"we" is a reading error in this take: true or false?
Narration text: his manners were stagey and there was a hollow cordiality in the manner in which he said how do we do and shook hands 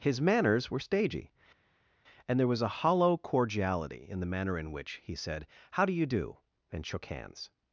true